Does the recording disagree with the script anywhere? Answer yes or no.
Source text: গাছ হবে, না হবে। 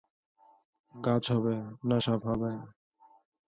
yes